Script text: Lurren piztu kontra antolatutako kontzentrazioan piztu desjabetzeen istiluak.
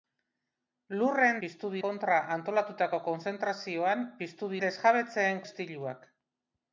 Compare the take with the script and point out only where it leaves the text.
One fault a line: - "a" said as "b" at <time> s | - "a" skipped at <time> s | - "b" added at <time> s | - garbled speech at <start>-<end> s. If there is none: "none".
none